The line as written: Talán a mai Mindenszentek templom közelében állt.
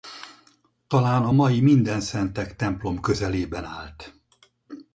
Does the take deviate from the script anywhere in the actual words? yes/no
no